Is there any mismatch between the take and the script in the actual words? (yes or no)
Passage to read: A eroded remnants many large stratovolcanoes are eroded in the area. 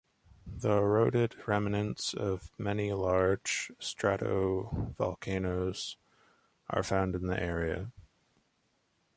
yes